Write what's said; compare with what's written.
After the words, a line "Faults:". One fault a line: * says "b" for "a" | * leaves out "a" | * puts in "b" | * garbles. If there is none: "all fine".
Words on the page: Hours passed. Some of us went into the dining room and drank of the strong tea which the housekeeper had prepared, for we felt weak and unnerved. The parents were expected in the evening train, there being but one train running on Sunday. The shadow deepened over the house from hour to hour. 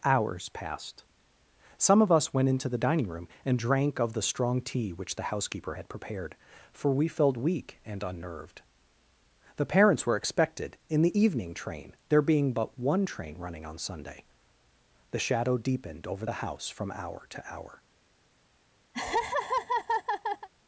Hours passed. Some of us went into the dining room and drank of the strong tea which the housekeeper had prepared, for we felt weak and unnerved. The parents were expected in the evening train, there being but one train running on Sunday. The shadow deepened over the house from hour to hour.
Faults:
all fine